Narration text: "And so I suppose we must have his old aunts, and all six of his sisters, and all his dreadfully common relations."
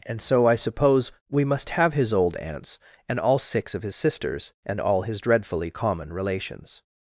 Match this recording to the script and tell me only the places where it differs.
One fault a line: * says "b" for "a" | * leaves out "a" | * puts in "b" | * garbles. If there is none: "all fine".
all fine